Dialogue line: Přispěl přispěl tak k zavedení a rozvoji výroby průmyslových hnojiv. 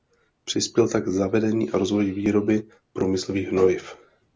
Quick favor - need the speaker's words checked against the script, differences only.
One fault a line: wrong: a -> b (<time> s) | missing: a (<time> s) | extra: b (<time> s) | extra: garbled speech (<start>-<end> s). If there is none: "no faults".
missing: přispěl (0.9 s)